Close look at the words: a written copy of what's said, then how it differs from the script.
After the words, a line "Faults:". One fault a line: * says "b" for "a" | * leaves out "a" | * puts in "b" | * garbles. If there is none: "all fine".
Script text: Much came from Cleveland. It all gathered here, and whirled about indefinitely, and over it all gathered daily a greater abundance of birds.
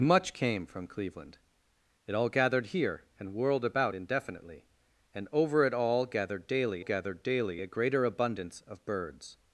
Much came from Cleveland. It all gathered here, and whirled about indefinitely, and over it all gathered daily gathered daily a greater abundance of birds.
Faults:
* puts in "gathered daily"